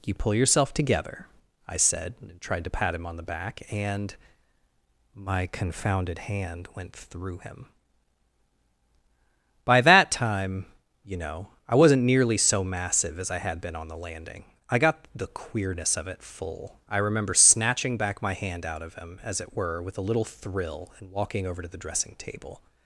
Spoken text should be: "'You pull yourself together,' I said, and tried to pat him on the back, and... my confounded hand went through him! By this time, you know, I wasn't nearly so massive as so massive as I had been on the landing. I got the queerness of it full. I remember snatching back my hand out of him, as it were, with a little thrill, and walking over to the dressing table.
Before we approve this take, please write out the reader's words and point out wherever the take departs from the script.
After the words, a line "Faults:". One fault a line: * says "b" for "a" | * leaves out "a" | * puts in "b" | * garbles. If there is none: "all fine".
"'You pull yourself together,' I said, and tried to pat him on the back, and... my confounded hand went through him! By that time, you know, I wasn't nearly so massive as I had been on the landing. I got the queerness of it full. I remember snatching back my hand out of him, as it were, with a little thrill, and walking over to the dressing table.
Faults:
* says "that" for "this"
* leaves out "so massive as"